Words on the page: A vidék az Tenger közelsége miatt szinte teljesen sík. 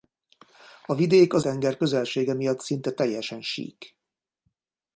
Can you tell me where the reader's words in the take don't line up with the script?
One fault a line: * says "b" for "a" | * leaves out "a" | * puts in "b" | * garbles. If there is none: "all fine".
all fine